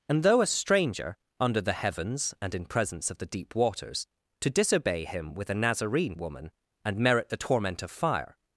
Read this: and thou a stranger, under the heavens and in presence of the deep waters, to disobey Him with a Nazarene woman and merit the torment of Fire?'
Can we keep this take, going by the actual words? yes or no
no